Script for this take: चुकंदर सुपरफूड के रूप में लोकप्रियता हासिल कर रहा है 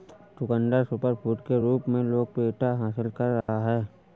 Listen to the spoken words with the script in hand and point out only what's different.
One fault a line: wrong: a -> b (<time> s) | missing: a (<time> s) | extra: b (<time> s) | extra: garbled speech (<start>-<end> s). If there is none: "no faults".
no faults